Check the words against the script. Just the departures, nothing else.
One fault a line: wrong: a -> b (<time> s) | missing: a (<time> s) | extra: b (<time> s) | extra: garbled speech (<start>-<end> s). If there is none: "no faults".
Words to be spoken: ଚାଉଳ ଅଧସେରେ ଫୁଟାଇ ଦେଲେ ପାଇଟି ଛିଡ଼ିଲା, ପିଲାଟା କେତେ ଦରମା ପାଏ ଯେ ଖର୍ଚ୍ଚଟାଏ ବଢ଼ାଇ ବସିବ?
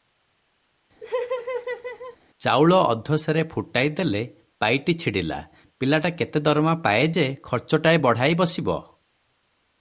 no faults